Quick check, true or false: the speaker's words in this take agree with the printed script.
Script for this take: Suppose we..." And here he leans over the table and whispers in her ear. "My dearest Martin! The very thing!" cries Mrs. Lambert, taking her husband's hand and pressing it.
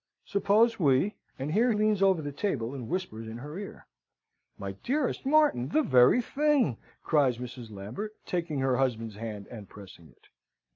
false